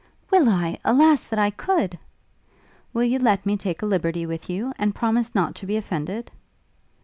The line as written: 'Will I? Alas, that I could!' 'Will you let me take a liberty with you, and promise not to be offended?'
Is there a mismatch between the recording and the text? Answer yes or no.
no